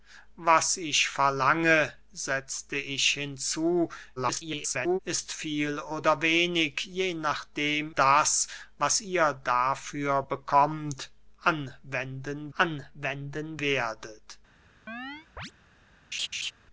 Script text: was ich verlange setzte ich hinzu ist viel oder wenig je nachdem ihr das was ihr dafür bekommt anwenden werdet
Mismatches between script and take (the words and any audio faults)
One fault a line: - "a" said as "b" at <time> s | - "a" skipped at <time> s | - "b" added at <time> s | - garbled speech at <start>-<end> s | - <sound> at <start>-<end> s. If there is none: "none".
- garbled speech at 4.2-5.0 s
- "ihr" skipped at 7.9 s
- "anwenden" added at 12.6 s
- chirp at 14.9-15.5 s
- laugh at 16.1-16.5 s